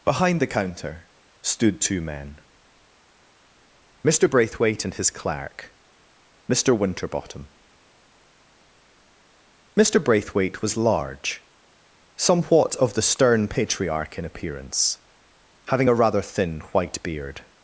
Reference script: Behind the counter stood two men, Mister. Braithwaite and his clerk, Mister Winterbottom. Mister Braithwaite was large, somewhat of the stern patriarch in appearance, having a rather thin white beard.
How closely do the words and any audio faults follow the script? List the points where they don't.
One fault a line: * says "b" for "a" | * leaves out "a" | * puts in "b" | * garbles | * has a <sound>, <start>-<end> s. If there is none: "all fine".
all fine